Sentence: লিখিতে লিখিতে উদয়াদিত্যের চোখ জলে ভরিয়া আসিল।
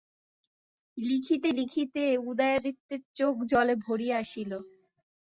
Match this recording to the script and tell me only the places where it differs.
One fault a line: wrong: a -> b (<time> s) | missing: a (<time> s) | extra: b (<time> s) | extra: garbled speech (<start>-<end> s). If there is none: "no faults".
no faults